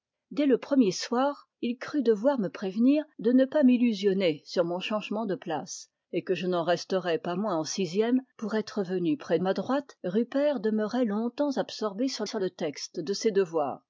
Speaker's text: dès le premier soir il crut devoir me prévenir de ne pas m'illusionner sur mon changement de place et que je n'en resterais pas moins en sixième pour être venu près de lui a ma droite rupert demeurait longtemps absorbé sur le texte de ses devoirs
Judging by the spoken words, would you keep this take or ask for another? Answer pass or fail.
fail